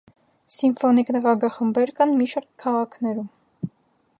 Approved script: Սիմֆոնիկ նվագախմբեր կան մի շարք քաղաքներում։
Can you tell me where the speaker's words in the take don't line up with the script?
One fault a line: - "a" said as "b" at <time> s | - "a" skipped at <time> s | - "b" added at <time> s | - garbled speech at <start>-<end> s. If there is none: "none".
none